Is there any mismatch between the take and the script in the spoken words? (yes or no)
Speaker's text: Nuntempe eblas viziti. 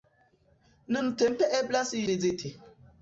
no